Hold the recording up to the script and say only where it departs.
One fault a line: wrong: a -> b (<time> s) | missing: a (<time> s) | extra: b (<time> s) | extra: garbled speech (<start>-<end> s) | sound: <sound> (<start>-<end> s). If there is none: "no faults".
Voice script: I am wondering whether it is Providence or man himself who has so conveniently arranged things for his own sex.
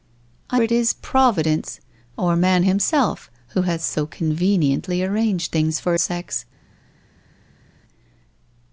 missing: am wondering whether (0.6 s)
missing: his own (5.9 s)